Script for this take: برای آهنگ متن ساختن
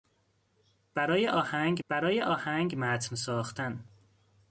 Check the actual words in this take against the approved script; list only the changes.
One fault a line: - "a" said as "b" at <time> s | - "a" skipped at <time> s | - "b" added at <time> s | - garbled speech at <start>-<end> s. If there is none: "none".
- "برای آهنگ" added at 1.9 s